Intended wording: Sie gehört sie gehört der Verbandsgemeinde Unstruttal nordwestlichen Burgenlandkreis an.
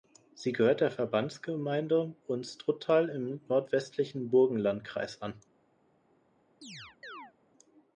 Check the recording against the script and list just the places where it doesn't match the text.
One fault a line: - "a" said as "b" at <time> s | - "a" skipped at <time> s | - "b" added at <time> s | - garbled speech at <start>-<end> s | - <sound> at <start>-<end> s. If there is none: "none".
- "sie gehört" skipped at 0.8 s
- "im" added at 3.1 s
- chirp at 6.6-7.3 s